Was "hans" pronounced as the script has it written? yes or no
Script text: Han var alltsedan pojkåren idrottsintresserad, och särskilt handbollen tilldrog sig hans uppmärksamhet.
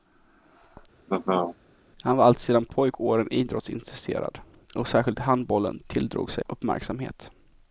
no